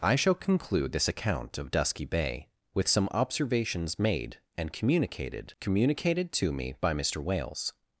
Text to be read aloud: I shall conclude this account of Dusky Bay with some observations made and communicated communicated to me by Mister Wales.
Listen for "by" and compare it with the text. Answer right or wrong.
right